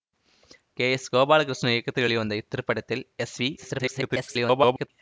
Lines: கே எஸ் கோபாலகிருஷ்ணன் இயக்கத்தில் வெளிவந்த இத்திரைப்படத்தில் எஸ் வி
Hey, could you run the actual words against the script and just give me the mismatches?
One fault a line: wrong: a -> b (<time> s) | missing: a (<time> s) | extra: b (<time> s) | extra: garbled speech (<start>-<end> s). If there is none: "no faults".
extra: garbled speech (3.6-4.9 s)